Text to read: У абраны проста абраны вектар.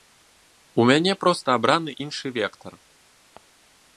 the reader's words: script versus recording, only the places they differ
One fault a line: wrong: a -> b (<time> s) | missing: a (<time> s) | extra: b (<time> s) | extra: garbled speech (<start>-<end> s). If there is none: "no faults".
wrong: абраны -> мяне (0.9 s)
extra: іншы (2.1 s)